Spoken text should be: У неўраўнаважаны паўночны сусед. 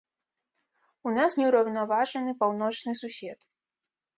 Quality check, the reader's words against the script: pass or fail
fail